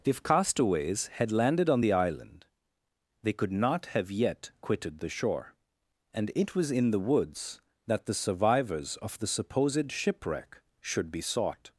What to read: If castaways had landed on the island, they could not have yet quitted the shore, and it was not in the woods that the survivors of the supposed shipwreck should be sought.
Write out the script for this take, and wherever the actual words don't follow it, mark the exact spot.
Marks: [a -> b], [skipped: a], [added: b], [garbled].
If castaways had landed on the island, they could not have yet quitted the shore, and it was [skipped: not] in the woods that the survivors of the supposed shipwreck should be sought.